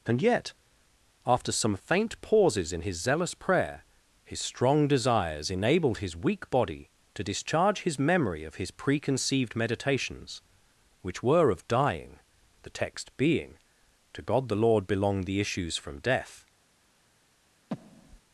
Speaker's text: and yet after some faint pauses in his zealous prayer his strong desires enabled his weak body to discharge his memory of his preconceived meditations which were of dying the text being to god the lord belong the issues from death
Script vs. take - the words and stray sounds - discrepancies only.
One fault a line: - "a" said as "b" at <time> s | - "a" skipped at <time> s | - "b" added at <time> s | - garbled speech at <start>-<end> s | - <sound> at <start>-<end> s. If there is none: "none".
- breath at 17.7-18.2 s